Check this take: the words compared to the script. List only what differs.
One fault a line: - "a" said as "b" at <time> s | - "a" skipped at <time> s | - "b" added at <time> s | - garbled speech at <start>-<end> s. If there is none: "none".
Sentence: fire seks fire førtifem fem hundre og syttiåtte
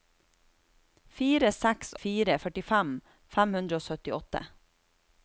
none